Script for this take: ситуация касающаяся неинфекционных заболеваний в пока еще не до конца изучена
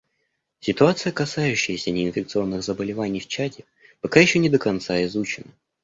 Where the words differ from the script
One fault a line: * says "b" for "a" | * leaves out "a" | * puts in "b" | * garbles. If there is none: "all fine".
* puts in "чаде"